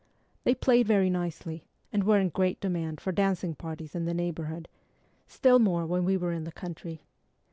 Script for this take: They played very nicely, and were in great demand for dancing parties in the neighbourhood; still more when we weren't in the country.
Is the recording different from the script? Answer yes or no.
yes